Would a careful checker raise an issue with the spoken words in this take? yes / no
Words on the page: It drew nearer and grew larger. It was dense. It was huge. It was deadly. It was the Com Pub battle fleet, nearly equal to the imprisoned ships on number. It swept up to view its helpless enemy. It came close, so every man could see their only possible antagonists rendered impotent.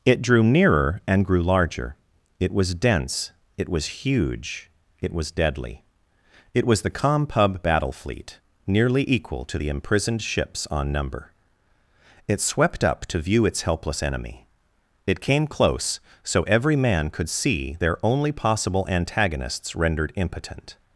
no